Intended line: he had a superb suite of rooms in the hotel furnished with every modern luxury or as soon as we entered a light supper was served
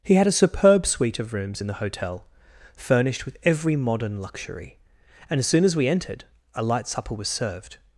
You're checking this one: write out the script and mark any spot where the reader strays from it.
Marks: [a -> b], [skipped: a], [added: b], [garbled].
he had a superb suite of rooms in the hotel furnished with every modern luxury [or -> and] as soon as we entered a light supper was served